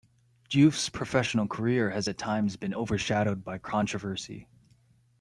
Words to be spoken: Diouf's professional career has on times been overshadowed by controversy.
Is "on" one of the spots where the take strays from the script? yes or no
yes